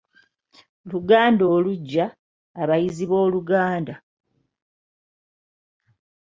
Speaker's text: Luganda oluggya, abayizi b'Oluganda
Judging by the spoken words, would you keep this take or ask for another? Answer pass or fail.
pass